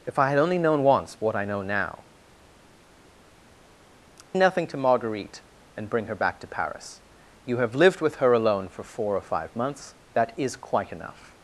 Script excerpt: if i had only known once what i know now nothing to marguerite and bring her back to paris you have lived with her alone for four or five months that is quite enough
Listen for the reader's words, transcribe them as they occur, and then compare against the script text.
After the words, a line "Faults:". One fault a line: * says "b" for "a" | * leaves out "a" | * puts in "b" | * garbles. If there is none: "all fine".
if i had only known once what i know now nothing to marguerite and bring her back to paris you have lived with her alone for four or five months that is quite enough
Faults:
all fine